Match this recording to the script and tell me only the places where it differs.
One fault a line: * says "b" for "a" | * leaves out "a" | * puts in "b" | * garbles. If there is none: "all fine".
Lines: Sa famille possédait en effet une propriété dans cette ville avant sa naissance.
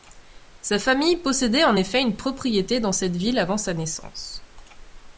all fine